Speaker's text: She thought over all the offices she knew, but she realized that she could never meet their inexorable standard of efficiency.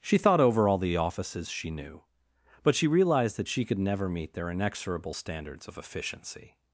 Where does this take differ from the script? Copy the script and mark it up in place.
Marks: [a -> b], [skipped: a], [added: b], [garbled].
She thought over all the offices she knew, but she realized that she could never meet their inexorable [standard -> standards] of efficiency.